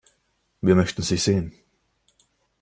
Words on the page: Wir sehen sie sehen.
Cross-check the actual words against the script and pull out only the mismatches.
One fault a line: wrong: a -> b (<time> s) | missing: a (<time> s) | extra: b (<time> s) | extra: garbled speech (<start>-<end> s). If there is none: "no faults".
wrong: sehen -> möchten (0.7 s)